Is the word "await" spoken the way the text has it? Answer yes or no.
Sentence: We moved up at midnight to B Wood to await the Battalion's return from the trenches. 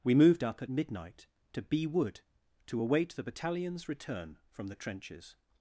yes